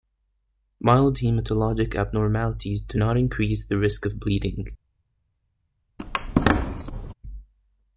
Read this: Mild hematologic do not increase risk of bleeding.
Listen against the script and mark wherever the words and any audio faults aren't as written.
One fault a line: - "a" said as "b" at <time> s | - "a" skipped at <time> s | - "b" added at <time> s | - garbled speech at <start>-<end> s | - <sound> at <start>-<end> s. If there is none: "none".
- "abnormalities" added at 1.9 s
- "the" added at 3.6 s
- squeak at 6.0-7.1 s